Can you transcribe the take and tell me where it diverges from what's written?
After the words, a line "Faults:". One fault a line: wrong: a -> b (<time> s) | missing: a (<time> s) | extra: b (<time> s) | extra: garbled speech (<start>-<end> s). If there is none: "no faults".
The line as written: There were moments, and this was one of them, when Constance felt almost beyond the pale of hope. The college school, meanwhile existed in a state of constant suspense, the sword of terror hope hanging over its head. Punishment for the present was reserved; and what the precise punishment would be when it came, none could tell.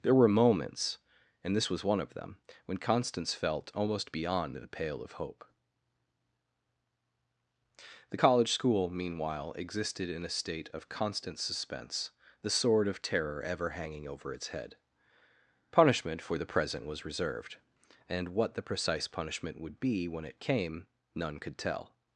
There were moments, and this was one of them, when Constance felt almost beyond the pale of hope. The college school, meanwhile existed in a state of constant suspense, the sword of terror ever hanging over its head. Punishment for the present was reserved; and what the precise punishment would be when it came, none could tell.
Faults:
wrong: hope -> ever (13.4 s)